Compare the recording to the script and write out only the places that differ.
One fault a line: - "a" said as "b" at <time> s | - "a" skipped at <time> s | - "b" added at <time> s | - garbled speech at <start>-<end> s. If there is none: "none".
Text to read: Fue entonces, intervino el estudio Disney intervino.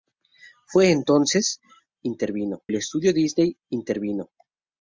none